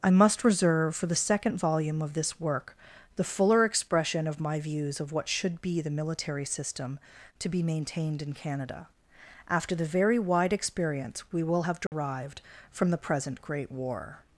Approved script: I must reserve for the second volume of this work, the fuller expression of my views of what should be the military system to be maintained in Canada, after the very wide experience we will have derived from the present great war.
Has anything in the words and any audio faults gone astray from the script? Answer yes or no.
yes